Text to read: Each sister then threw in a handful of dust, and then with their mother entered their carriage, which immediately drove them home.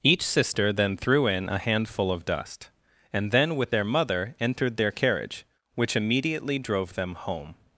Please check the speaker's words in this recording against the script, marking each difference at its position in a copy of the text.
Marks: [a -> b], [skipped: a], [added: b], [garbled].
Each sister then threw in a handful of dust, and then with their mother entered their carriage, which immediately drove them home.